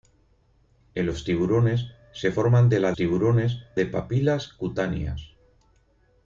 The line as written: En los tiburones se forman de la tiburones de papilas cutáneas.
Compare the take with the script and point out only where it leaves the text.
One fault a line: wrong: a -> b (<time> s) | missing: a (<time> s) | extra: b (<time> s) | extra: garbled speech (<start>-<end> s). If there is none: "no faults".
no faults